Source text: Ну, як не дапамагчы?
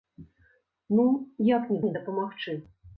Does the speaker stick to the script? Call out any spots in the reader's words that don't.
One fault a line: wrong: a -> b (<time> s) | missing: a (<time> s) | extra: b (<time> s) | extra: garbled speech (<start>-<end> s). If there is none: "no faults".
extra: не (1.8 s)